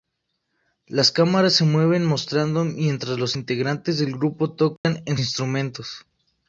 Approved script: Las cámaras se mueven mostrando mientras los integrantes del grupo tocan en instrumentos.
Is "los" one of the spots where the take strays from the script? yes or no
no